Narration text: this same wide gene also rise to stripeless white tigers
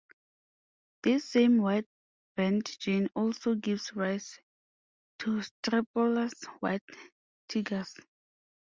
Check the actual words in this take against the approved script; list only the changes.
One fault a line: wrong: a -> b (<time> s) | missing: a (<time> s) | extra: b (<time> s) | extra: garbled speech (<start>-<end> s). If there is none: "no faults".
extra: band (2.4 s)
extra: gives (3.6 s)